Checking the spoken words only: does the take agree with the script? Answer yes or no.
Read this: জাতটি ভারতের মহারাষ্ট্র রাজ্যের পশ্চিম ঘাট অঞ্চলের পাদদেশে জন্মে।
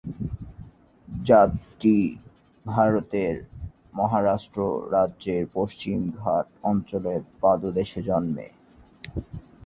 yes